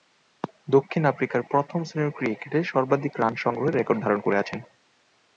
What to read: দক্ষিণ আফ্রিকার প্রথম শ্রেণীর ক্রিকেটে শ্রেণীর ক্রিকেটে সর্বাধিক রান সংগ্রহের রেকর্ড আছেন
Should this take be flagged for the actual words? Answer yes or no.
yes